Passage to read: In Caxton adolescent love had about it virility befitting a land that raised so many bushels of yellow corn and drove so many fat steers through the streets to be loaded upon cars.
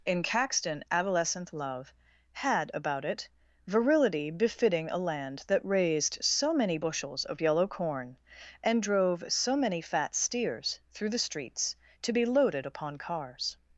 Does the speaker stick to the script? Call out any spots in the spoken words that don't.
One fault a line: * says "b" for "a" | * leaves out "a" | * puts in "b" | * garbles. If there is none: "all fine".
all fine